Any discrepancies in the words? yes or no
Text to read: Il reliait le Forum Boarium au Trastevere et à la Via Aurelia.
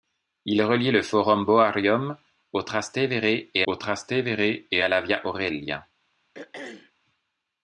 yes